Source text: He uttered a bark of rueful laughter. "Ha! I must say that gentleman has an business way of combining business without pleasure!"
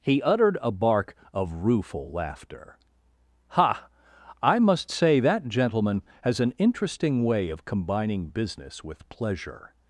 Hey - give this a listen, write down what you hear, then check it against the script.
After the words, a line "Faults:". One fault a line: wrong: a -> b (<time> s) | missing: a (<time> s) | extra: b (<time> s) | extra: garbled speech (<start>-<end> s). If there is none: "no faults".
He uttered a bark of rueful laughter. "Ha! I must say that gentleman has an interesting way of combining business with pleasure!"
Faults:
wrong: business -> interesting (6.6 s)
wrong: without -> with (8.8 s)